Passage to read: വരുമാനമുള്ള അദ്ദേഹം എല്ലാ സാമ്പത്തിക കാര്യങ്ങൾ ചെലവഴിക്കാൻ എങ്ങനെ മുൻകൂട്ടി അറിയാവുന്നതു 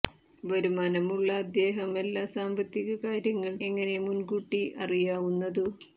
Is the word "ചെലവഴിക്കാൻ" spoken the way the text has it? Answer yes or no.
no